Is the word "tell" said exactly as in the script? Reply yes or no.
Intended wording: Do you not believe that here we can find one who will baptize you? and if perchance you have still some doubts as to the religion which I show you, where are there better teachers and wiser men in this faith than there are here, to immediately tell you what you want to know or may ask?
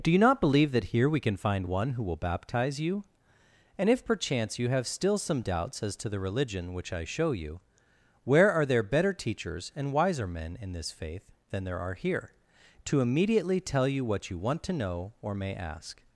yes